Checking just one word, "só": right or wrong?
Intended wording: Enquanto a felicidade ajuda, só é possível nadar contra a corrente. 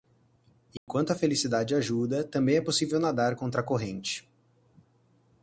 wrong